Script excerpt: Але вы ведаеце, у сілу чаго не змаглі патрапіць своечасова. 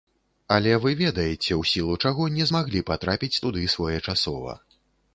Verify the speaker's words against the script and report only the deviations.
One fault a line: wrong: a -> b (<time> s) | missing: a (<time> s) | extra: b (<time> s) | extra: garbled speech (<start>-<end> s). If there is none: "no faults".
extra: туды (3.5 s)